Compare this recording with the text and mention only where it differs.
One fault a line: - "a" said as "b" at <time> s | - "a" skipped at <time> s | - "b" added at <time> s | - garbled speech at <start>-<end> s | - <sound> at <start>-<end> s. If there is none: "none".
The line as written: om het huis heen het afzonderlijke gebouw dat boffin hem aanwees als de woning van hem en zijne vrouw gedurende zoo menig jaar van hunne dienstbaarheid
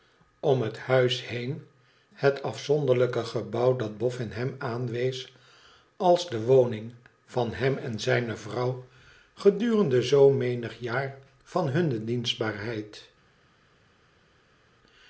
none